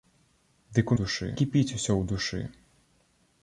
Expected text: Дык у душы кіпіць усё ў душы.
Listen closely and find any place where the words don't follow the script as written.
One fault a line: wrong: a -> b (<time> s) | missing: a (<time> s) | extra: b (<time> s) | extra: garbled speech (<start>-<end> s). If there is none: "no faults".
no faults